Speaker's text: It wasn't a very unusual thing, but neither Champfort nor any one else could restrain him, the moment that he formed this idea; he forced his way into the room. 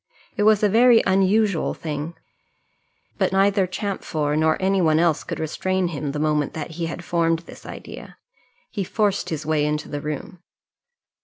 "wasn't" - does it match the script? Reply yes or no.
no